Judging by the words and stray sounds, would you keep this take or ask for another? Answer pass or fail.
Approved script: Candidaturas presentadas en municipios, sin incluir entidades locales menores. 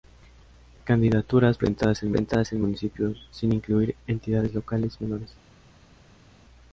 fail